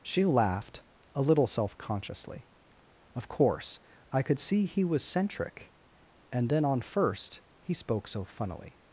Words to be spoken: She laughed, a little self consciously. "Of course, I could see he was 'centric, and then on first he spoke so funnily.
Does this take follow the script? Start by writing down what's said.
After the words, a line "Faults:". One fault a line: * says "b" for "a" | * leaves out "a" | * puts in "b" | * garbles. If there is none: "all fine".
She laughed, a little self consciously. "Of course, I could see he was 'centric, and then on first he spoke so funnily.
Faults:
all fine